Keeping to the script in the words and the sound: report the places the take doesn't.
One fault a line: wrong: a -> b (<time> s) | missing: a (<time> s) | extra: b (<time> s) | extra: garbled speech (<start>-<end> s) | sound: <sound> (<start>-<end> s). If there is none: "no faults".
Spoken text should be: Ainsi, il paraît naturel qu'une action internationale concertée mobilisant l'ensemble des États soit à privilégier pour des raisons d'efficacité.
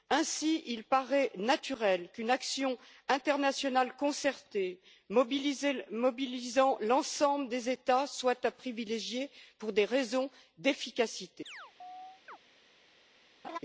sound: chirp (11.5-12.4 s)
sound: laugh (13.4-13.6 s)